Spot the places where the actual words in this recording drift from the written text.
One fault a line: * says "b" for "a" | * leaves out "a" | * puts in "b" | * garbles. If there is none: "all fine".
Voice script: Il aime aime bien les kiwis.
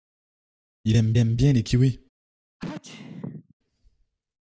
all fine